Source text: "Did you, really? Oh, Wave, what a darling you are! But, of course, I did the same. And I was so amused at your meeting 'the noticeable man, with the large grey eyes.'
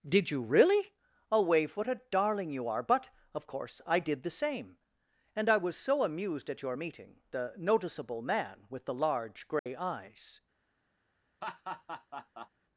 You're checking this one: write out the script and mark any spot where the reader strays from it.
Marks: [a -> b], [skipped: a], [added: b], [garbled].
"Did you, really? Oh, Wave, what a darling you are! But, of course, I did the same. And I was so amused at your meeting 'the noticeable man, with the large grey eyes.'